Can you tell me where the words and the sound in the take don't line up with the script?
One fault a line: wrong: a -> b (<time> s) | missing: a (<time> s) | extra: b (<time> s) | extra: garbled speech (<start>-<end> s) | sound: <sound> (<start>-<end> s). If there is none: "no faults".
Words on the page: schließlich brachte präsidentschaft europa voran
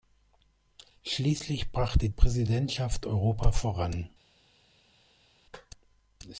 no faults